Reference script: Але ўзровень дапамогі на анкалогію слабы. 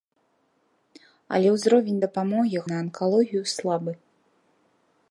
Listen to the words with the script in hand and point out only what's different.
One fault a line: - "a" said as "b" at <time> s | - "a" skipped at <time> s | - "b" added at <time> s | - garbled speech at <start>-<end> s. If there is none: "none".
none